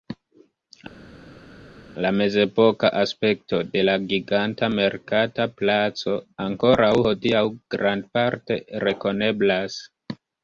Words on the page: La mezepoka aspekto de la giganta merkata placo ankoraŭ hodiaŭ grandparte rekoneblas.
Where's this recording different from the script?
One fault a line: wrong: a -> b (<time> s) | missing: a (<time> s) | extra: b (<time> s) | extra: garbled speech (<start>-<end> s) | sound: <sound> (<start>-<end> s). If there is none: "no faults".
no faults